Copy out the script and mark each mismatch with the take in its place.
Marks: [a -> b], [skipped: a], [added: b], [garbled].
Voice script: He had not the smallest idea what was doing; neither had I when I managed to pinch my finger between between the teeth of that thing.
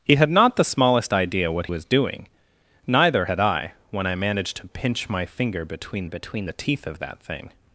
He had not the smallest idea what was doing; neither had I when I managed to pinch my finger between between the teeth of that thing.